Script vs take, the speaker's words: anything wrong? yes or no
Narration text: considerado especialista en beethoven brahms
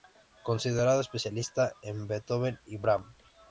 yes